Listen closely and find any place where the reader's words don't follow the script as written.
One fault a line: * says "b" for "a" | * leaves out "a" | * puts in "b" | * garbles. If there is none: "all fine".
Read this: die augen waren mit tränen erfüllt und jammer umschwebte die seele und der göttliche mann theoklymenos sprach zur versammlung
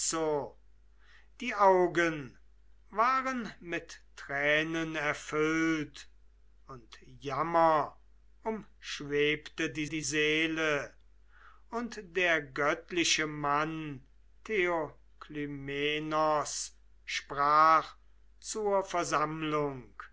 * puts in "die"